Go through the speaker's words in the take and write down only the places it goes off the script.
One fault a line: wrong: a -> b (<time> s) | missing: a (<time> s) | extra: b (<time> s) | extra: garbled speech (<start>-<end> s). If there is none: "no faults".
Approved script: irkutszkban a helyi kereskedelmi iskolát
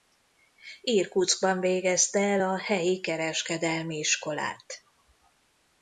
extra: végezte el (1.6 s)